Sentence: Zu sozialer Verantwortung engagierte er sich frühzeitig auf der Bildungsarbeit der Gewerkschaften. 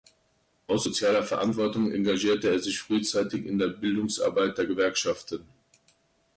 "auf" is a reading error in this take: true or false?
true